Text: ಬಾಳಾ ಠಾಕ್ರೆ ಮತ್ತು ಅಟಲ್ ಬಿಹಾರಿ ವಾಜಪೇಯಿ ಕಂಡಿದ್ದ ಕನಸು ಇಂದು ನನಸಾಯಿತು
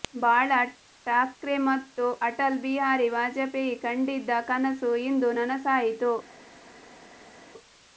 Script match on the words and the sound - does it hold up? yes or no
yes